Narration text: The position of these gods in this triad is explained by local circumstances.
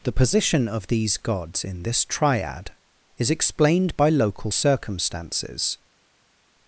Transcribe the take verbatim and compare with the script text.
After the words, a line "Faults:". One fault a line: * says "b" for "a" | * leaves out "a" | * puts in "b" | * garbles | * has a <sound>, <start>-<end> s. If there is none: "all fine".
The position of these gods in this triad is explained by local circumstances.
Faults:
all fine